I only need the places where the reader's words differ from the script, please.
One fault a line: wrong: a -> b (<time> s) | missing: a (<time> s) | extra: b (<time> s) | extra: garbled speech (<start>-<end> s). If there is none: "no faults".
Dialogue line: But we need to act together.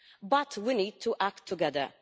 no faults